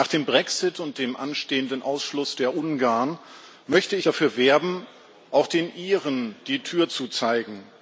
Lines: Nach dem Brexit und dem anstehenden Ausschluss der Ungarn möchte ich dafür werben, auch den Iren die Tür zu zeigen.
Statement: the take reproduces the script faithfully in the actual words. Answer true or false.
true